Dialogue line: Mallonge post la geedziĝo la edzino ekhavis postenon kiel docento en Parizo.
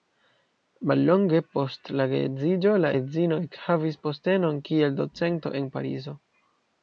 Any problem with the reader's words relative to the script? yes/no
no